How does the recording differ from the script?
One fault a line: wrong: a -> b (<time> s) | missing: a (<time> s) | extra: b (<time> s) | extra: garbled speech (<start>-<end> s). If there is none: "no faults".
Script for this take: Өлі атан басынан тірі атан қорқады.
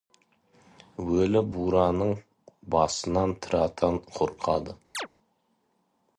wrong: атан -> бураның (1.6 s)